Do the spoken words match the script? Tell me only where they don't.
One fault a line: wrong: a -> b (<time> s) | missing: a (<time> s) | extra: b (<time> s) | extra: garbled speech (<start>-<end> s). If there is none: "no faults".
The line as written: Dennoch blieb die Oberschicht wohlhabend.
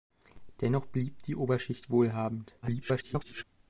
extra: garbled speech (2.6-3.4 s)